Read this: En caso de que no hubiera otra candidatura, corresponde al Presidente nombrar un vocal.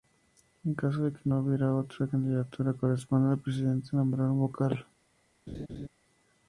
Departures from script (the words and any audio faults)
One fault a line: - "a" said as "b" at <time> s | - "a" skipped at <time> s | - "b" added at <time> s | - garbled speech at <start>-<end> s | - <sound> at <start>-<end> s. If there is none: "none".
- laugh at 5.5-5.9 s